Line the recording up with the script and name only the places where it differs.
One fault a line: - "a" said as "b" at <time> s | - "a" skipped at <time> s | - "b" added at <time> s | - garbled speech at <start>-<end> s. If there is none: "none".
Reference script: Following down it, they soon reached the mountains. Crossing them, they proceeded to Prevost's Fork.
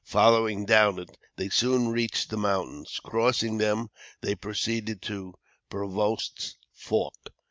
none